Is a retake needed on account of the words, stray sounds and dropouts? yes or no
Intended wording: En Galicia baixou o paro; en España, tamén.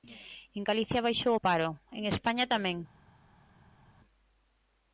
no